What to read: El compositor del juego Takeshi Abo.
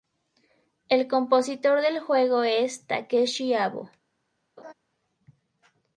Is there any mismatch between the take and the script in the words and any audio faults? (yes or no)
yes